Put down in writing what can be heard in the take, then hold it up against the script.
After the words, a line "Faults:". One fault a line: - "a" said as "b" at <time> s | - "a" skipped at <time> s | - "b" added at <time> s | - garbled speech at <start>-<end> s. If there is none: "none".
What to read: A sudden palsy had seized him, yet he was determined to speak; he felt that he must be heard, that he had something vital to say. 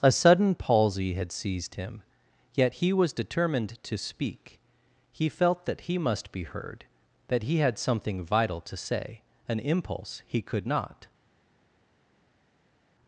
A sudden palsy had seized him, yet he was determined to speak; he felt that he must be heard, that he had something vital to say. An impulse he could not
Faults:
- "An impulse he could not" added at 9.5 s